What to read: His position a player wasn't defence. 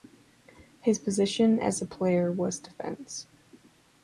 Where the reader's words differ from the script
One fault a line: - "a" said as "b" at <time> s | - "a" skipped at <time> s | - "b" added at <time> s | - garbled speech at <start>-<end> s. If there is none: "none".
- "as" added at 1.6 s
- "wasn't" said as "was" at 2.3 s